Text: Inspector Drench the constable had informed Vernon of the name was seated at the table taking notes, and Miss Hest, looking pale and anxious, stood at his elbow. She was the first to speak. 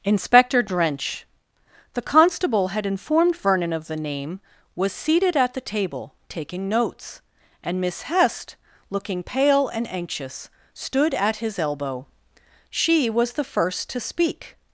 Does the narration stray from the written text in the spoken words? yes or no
no